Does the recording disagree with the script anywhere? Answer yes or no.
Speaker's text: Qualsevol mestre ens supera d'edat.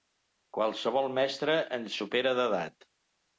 no